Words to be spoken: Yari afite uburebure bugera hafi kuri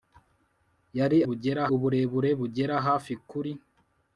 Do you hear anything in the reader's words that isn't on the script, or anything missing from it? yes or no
yes